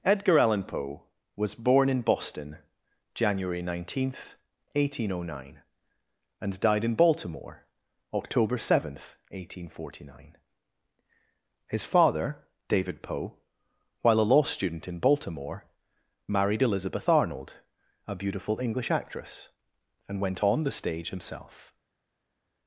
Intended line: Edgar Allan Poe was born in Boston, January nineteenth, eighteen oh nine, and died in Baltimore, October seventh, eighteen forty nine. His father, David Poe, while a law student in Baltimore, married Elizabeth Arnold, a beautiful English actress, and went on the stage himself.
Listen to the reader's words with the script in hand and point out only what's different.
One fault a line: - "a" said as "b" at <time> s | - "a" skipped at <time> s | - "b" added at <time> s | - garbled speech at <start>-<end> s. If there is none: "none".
none